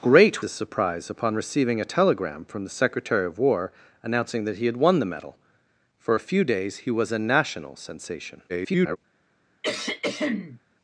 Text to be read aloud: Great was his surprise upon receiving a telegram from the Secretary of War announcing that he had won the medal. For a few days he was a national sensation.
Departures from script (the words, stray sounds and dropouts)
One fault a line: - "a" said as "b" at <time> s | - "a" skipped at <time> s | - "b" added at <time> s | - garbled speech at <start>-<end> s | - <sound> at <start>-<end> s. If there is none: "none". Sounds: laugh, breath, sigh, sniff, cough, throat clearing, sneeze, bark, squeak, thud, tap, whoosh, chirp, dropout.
- "was" skipped at 0.4 s
- garbled speech at 8.5-9.0 s
- throat clearing at 9.6-10.6 s